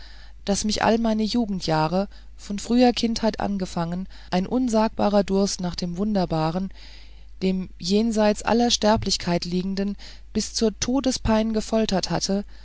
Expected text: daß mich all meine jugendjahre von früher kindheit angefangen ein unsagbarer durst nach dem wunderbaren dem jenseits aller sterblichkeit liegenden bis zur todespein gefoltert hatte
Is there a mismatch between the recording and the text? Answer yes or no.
no